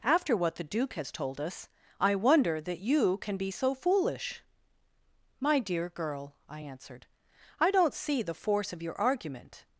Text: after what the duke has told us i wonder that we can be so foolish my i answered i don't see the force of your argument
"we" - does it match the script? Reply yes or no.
no